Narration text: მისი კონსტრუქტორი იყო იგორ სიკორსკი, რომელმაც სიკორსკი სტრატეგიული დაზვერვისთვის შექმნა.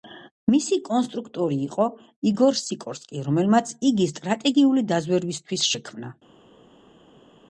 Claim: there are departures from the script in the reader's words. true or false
true